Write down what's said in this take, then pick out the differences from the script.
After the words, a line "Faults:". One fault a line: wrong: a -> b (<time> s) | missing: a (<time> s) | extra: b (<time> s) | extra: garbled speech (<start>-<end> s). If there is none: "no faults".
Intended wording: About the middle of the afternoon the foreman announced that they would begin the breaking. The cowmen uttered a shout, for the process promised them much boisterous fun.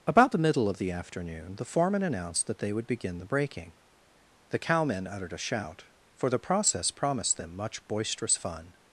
About the middle of the afternoon the foreman announced that they would begin the breaking. The cowmen uttered a shout, for the process promised them much boisterous fun.
Faults:
no faults